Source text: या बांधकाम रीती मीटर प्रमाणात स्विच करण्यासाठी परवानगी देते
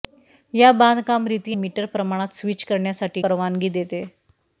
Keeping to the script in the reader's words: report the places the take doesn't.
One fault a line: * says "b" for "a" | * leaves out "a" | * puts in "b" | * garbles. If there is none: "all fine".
all fine